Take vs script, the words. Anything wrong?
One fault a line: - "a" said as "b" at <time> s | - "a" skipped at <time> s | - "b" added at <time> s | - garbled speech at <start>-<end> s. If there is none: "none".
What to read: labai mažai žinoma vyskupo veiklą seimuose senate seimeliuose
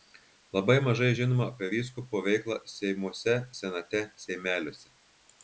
- "apie" added at 1.5 s